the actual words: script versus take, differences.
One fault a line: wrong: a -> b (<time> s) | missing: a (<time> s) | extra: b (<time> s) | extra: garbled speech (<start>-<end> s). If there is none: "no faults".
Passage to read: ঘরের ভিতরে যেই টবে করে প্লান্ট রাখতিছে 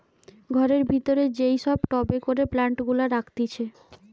extra: সব (1.6 s)
extra: গুলা (2.9 s)